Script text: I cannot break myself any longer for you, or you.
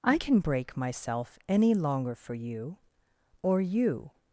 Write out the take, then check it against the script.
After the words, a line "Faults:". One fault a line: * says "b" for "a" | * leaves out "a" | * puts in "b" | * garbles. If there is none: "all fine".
I can break myself any longer for you, or you.
Faults:
* says "can" for "cannot"